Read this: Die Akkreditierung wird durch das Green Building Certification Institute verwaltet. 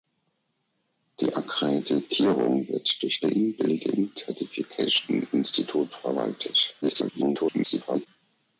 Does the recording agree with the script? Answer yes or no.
no